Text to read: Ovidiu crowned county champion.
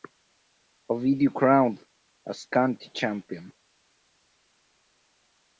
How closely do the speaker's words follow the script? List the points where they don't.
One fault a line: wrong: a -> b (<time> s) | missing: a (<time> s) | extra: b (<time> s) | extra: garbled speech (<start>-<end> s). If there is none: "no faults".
extra: as (2.3 s)